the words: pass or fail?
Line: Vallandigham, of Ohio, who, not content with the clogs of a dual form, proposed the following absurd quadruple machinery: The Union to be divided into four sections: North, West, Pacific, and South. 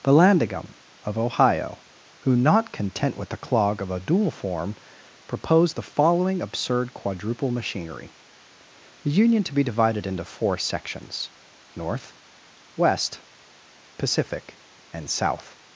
fail